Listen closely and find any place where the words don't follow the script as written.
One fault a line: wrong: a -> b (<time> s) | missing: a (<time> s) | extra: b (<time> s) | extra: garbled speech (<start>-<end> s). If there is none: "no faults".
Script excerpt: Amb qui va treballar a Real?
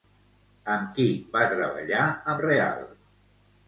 no faults